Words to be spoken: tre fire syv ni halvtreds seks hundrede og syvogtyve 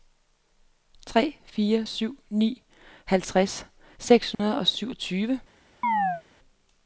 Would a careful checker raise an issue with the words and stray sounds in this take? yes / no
yes